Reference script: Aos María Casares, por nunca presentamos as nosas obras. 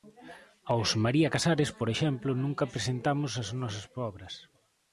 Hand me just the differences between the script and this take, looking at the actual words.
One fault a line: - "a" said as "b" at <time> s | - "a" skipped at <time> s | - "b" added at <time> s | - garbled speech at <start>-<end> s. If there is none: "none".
- "exemplo" added at 1.9 s